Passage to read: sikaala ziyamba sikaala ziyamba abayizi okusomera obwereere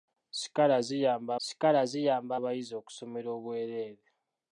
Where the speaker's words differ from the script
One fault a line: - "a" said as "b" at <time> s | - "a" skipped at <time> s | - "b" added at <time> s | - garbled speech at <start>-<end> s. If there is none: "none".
none